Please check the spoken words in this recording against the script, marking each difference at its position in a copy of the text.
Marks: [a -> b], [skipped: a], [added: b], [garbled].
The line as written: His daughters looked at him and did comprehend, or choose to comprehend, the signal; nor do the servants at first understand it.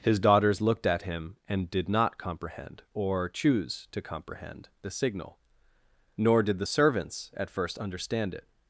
His daughters looked at him and did [added: not] comprehend, or choose to comprehend, the signal; nor [do -> did] the servants at first understand it.